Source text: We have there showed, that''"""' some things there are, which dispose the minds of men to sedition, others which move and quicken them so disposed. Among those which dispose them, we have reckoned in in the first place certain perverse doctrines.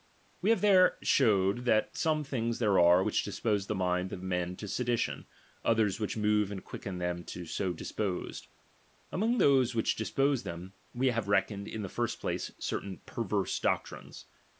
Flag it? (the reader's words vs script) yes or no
yes